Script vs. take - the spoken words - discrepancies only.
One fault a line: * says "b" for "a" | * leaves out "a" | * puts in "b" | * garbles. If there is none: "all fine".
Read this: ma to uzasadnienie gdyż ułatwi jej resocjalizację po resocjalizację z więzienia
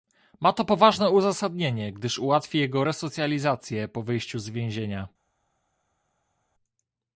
* puts in "poważne"
* says "jego" for "jej"
* says "wyjściu" for "resocjalizację"